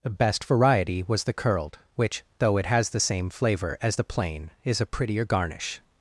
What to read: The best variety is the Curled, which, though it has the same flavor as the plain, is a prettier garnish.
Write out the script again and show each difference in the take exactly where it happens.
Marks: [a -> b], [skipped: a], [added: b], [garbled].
The best variety [is -> was] the Curled, which, though it has the same flavor as the plain, is a prettier garnish.